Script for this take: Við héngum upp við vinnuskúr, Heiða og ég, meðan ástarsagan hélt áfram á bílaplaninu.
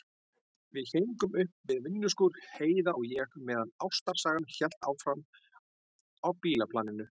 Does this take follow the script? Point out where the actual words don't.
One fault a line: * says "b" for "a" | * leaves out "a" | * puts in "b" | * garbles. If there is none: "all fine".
all fine